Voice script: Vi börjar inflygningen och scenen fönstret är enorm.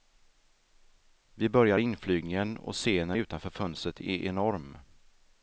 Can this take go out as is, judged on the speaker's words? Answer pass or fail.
fail